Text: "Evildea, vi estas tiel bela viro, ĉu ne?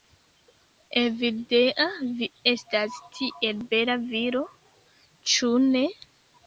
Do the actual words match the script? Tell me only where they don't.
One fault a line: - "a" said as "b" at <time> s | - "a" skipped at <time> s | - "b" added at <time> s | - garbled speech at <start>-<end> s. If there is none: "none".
none